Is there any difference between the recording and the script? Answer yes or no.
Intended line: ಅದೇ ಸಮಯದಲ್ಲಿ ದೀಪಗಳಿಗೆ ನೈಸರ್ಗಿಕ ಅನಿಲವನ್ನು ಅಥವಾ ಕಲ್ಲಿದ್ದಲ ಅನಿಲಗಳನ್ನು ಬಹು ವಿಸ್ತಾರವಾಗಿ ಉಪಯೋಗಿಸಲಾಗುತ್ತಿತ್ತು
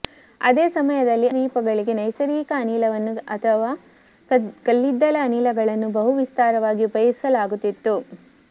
no